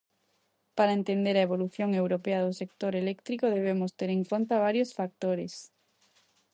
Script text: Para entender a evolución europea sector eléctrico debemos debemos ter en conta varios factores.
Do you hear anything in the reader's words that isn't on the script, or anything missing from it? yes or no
yes